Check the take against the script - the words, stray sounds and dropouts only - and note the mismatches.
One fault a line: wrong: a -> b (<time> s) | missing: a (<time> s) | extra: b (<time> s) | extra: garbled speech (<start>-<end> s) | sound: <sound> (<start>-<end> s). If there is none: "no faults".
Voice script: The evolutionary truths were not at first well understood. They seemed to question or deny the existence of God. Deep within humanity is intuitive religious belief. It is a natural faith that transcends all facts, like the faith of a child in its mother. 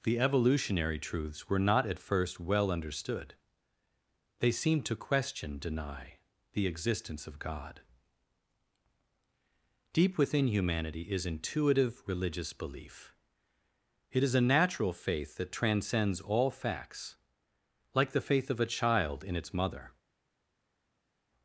missing: or (5.6 s)